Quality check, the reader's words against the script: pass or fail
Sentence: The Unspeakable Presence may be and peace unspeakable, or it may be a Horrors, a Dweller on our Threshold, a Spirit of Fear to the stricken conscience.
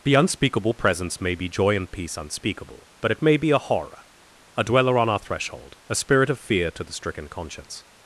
fail